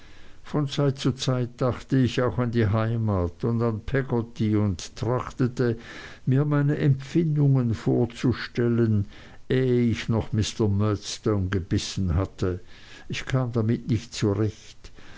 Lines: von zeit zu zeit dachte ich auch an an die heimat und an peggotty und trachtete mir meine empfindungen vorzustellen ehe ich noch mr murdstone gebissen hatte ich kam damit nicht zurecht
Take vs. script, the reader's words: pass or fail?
fail